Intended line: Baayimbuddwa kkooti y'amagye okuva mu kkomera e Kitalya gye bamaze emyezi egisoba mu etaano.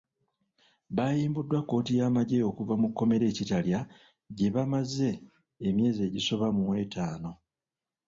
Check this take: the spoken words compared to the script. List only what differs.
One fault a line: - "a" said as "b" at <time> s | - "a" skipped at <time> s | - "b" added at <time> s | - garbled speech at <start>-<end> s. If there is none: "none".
none